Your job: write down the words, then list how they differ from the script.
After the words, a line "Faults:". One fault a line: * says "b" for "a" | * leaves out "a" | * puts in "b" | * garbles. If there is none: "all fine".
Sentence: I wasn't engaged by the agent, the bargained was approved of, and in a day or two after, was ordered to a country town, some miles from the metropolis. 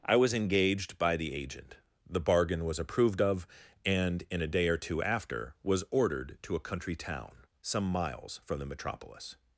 I was engaged by the agent, the bargain was approved of, and in a day or two after, was ordered to a country town, some miles from the metropolis.
Faults:
* says "was" for "wasn't"
* says "bargain" for "bargained"